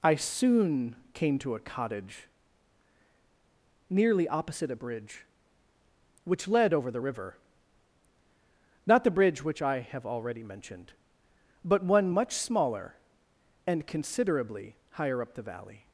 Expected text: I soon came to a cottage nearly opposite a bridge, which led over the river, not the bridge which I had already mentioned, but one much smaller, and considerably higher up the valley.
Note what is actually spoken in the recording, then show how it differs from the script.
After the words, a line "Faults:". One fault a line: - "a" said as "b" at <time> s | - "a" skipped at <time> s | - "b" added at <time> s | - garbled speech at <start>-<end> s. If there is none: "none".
I soon came to a cottage nearly opposite a bridge, which led over the river, not the bridge which I have already mentioned, but one much smaller, and considerably higher up the valley.
Faults:
- "had" said as "have" at 9.8 s